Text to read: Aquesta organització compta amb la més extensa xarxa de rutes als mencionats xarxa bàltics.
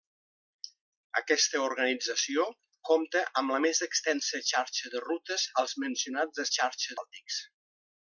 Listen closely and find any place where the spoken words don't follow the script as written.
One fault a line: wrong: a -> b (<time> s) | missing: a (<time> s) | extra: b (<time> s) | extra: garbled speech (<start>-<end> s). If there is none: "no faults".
no faults